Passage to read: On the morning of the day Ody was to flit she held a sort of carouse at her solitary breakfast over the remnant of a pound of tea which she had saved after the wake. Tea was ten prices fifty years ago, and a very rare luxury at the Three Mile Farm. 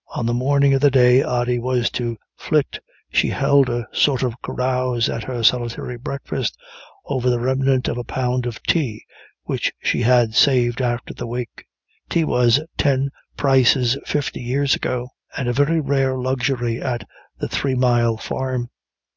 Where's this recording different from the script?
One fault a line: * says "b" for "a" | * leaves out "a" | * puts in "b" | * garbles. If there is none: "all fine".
all fine